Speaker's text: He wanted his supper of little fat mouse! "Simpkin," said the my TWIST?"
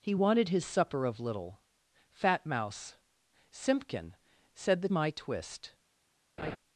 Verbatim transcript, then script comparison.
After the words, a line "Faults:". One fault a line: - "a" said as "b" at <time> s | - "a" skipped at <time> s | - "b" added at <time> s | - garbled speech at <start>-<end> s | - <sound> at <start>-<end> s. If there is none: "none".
He wanted his supper of little fat mouse! "Simpkin," said the my TWIST?"
Faults:
- laugh at 6.4-6.6 s